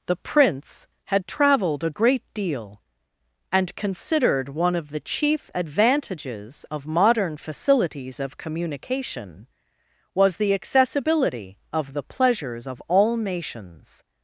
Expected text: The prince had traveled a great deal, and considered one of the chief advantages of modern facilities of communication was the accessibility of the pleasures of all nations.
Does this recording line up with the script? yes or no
yes